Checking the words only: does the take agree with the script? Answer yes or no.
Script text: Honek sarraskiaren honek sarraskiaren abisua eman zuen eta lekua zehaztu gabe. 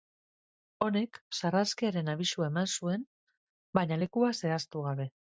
no